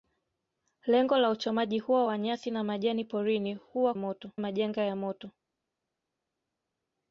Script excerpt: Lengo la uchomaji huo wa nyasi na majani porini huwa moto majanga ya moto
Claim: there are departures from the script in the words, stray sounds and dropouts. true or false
false